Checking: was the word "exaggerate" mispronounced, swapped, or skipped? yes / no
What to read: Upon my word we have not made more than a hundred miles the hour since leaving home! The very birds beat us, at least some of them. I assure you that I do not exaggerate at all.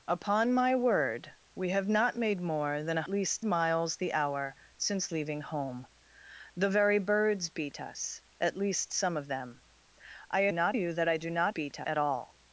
yes